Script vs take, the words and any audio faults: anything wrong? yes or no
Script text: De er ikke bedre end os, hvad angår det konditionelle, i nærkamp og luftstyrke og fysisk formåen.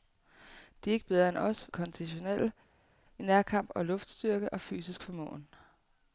yes